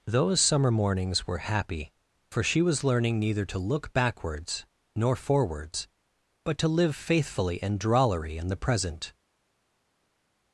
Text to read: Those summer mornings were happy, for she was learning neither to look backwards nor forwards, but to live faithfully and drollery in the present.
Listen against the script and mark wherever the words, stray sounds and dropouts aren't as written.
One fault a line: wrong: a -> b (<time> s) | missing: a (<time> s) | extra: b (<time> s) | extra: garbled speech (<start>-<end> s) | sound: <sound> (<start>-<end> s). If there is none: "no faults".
no faults